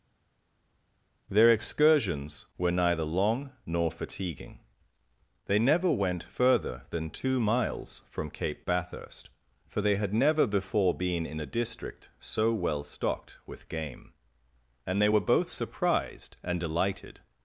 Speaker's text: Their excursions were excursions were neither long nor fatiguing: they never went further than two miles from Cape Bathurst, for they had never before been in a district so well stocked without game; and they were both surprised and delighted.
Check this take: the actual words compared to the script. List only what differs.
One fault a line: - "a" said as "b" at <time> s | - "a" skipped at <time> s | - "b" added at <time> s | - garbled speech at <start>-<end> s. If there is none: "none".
- "excursions were" skipped at 2.7 s
- "without" said as "with" at 13.5 s